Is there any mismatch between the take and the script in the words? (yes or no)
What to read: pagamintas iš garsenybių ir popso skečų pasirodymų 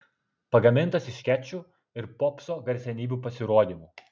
yes